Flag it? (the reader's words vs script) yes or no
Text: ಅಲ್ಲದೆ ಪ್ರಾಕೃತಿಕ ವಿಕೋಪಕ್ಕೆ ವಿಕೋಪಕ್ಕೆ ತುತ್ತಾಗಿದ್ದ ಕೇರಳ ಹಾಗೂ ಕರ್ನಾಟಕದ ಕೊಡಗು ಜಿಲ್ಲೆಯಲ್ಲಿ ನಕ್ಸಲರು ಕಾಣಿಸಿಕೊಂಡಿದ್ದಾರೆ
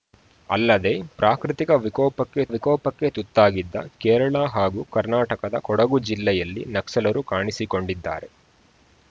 no